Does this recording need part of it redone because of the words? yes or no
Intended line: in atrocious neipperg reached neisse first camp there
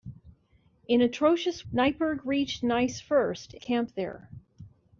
no